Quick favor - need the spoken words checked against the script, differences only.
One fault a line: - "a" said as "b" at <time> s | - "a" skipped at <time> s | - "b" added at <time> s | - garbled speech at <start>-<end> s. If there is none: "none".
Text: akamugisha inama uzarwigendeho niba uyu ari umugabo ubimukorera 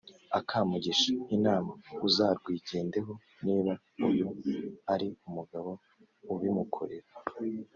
none